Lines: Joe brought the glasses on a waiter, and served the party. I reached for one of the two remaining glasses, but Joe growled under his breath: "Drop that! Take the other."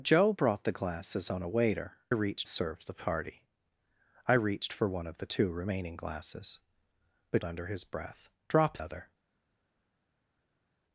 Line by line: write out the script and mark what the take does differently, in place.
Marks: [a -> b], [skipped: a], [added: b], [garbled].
Joe brought the glasses on a waiter, [and -> reached] served the party. I reached for one of the two remaining glasses, but [skipped: Joe growled] under his breath: "Drop [skipped: that! Take the] other."